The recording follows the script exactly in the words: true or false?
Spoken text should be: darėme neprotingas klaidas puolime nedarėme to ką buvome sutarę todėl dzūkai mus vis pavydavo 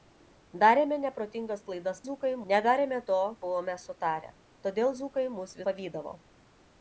false